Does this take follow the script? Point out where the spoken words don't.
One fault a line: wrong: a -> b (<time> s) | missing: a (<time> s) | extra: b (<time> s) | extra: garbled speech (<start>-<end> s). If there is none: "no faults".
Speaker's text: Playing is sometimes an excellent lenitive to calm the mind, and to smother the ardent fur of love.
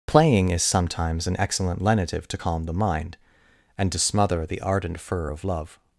no faults